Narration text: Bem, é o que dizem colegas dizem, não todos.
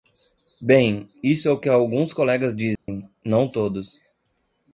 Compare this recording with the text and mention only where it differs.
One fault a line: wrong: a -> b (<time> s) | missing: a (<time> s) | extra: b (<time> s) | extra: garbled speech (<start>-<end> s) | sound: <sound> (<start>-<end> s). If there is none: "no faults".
extra: isso (1.2 s)
wrong: dizem -> alguns (1.7 s)
sound: dropout (2.8-2.9 s)